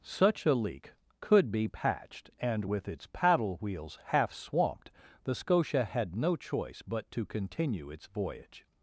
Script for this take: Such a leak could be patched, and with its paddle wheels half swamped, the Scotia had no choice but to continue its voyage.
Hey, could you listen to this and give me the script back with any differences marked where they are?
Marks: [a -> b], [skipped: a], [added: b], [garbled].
Such a leak could be patched, and with its paddle wheels half swamped, the Scotia had no choice but to continue its voyage.